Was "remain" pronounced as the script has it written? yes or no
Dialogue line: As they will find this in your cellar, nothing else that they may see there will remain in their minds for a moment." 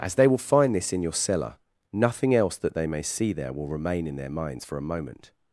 yes